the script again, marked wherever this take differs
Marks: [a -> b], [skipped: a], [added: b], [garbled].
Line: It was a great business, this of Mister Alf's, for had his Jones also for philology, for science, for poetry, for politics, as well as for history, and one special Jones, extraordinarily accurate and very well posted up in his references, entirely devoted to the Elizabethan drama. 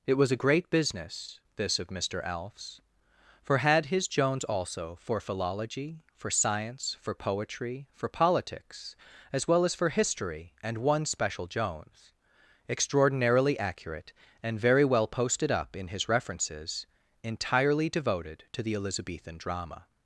It was a great business, this of Mister Alf's, for had his Jones also for philology, for science, for poetry, for politics, as well as for history, and one special Jones, extraordinarily accurate and very well posted up in his references, entirely devoted to the Elizabethan drama.